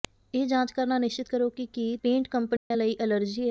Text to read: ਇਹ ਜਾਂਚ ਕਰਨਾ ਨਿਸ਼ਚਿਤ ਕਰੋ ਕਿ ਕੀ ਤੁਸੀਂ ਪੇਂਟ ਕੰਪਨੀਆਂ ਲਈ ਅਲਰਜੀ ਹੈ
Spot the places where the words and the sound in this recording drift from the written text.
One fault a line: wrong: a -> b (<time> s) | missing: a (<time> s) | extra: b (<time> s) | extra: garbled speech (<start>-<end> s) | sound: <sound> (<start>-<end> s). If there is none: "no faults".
missing: ਤੁਸੀਂ (1.9 s)
sound: dropout (2.6-2.7 s)